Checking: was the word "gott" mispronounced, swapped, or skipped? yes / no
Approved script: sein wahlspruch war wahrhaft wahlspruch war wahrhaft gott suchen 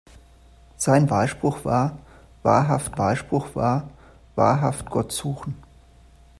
no